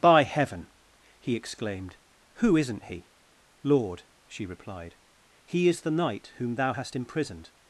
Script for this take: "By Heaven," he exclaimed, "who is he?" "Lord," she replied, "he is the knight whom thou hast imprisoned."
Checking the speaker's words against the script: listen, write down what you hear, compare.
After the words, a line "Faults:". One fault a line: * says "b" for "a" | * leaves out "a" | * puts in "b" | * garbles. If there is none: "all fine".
"By Heaven," he exclaimed, "who isn't he?" "Lord," she replied, "he is the knight whom thou hast imprisoned."
Faults:
* says "isn't" for "is"